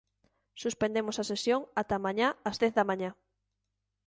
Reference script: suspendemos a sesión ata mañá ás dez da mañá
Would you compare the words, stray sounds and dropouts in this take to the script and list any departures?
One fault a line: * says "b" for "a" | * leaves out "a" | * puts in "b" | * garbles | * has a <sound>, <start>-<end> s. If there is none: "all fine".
all fine